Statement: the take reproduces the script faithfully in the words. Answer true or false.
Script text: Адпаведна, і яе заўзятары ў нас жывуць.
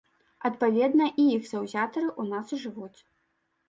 false